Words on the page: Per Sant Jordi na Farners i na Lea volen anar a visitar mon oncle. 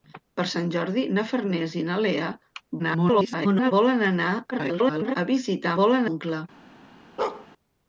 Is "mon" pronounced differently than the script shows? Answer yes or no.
yes